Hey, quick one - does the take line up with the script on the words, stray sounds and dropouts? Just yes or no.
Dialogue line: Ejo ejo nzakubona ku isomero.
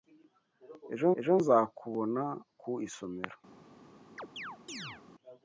no